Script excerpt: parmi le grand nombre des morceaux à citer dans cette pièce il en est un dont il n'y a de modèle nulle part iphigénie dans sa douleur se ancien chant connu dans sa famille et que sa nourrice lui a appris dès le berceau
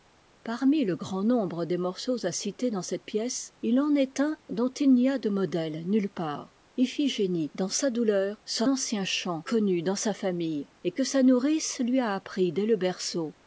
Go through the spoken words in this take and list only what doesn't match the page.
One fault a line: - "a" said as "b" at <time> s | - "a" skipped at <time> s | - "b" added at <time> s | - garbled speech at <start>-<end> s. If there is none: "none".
none